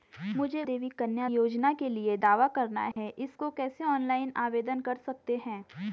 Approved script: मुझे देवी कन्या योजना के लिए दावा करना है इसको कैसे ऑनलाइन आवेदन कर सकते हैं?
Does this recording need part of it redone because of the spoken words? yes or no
no